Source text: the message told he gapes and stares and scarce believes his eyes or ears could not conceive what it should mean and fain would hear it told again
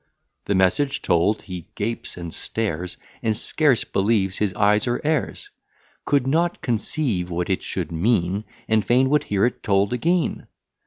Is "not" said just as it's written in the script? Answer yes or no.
yes